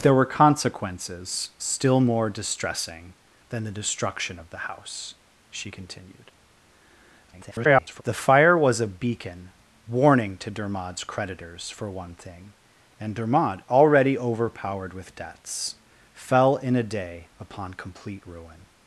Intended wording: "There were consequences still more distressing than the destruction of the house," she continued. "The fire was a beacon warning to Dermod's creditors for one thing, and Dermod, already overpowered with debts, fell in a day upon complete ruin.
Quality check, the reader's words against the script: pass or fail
fail